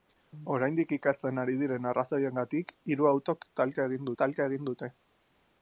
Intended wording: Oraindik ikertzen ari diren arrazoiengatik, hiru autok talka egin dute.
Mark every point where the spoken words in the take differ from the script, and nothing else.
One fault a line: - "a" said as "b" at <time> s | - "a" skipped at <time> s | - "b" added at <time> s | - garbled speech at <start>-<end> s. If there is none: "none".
- "talka egin" added at 4.2 s